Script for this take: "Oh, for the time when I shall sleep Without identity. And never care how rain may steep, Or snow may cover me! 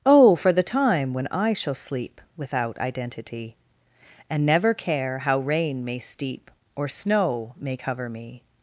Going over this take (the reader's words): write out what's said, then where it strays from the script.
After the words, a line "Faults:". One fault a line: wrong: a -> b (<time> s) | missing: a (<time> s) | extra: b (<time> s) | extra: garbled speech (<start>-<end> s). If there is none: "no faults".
"Oh, for the time when I shall sleep Without identity. And never care how rain may steep, Or snow may cover me!
Faults:
no faults